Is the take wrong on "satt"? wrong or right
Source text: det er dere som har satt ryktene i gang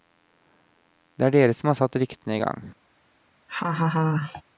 right